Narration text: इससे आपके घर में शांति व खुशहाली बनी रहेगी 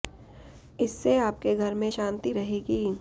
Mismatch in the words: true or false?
true